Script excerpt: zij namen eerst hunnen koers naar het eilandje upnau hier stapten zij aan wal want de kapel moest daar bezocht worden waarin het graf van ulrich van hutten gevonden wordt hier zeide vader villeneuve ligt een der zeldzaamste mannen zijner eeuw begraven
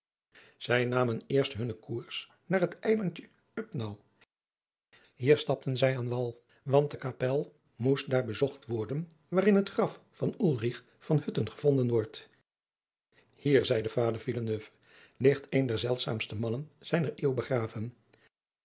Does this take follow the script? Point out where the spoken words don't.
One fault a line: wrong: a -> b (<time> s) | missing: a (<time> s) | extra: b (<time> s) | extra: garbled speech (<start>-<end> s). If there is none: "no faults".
no faults